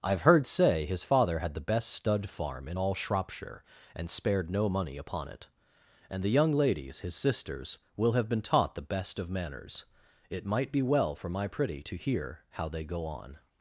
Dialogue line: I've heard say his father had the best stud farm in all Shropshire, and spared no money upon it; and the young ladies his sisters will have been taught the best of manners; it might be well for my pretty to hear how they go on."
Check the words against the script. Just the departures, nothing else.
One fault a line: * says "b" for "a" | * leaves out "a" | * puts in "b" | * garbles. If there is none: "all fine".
all fine